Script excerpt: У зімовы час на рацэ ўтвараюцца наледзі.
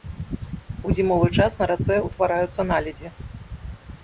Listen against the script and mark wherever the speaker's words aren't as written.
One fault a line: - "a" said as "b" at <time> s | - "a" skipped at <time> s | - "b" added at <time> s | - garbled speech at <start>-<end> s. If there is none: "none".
none